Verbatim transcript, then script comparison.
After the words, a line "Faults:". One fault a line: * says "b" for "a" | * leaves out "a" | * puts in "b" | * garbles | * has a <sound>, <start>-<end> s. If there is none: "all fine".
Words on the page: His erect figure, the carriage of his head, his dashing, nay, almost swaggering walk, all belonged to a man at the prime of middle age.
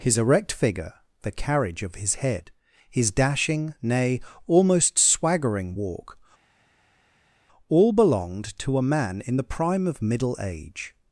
His erect figure, the carriage of his head, his dashing, nay, almost swaggering walk, all belonged to a man in the prime of middle age.
Faults:
* says "in" for "at"